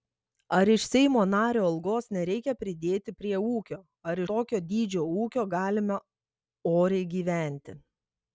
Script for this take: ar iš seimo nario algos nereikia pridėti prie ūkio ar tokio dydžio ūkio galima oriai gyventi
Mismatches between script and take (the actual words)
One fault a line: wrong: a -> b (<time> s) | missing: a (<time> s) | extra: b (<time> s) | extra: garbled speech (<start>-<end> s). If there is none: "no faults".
no faults